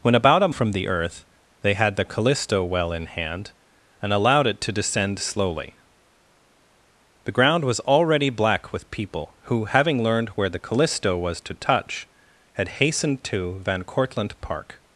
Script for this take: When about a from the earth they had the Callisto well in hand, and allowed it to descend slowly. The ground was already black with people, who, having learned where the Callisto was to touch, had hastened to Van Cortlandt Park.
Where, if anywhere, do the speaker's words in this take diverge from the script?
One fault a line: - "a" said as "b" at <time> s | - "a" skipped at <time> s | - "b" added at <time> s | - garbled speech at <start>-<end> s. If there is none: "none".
none